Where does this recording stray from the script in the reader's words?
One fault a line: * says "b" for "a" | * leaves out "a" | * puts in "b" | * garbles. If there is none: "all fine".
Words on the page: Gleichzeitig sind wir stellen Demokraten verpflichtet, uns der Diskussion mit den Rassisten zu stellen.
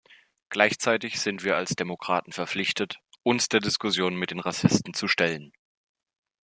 * says "als" for "stellen"